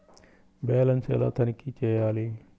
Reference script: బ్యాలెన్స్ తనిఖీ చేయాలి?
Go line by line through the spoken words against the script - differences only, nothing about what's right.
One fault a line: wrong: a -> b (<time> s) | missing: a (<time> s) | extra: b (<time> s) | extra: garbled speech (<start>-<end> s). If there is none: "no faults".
extra: ఎలా (1.1 s)